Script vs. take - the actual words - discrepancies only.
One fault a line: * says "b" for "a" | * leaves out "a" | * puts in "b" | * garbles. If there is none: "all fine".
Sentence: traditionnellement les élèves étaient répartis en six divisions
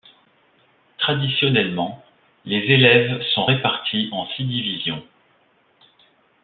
* says "sont" for "étaient"